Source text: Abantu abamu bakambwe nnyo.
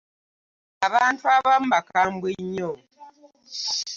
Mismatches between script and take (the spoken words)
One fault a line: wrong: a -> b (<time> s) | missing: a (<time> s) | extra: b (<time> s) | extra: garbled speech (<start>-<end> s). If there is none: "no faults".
no faults